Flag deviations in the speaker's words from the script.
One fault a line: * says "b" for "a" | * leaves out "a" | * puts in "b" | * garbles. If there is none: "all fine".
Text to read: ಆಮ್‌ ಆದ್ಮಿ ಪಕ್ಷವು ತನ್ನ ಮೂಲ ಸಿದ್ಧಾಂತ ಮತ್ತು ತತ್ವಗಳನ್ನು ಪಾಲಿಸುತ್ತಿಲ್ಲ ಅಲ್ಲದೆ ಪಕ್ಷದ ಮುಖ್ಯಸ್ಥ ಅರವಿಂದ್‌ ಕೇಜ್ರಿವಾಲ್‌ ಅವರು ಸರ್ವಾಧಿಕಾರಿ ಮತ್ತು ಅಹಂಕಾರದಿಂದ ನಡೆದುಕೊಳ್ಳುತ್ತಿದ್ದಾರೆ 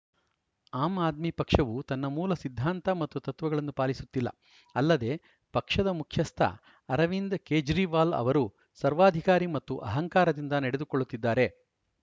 all fine